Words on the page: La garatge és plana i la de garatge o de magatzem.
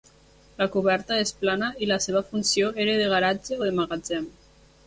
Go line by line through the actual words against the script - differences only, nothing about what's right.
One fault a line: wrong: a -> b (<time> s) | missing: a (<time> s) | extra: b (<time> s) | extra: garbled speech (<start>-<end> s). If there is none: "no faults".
wrong: garatge -> coberta (0.8 s)
extra: seva funció era (2.1 s)